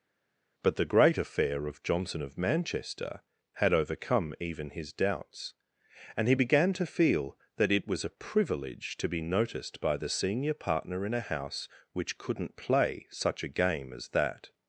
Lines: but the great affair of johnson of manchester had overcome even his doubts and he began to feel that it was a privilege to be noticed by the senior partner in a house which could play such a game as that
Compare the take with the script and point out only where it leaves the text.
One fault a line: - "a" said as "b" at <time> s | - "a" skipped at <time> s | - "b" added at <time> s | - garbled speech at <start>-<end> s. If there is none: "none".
- "could" said as "couldn't" at 12.2 s